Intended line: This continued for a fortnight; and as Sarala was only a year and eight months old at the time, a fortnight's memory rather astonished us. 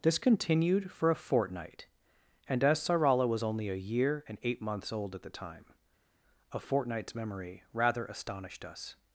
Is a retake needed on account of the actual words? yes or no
no